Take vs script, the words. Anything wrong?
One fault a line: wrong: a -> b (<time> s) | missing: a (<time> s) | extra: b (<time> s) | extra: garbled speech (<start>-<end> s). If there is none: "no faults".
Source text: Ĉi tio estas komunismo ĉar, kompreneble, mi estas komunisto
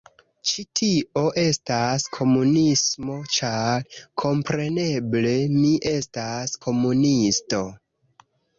no faults